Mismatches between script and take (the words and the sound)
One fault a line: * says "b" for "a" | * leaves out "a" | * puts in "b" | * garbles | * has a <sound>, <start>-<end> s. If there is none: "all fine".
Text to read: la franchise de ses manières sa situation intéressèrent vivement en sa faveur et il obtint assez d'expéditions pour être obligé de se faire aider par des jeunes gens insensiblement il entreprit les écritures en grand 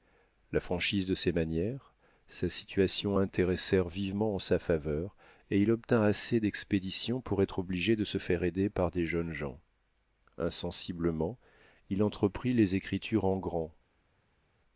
all fine